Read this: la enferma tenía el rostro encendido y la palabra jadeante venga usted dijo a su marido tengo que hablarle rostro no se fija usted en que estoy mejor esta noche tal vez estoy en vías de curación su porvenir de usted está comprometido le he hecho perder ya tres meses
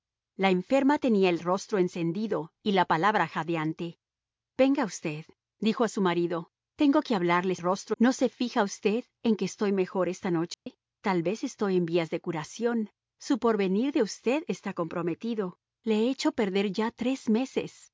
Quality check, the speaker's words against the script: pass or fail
pass